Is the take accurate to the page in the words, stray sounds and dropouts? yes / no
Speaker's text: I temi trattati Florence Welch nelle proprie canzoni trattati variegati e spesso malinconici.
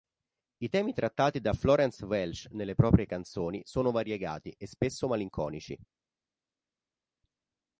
no